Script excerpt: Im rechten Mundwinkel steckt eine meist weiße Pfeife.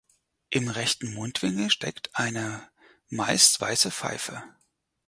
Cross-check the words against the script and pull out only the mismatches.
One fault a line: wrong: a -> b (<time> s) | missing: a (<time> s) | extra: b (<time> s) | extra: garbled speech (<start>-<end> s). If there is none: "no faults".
no faults